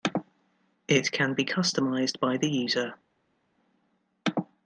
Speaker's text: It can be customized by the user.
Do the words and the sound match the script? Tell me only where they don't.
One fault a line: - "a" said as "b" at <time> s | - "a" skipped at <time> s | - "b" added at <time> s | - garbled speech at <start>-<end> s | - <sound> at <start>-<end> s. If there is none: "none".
none